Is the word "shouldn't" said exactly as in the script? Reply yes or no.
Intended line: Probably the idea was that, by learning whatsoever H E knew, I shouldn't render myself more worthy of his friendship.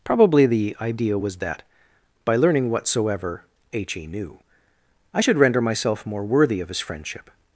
no